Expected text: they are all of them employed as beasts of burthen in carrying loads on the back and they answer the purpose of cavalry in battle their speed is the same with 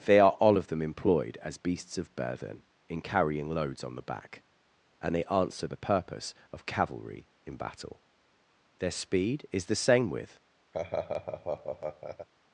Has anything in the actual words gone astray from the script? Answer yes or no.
no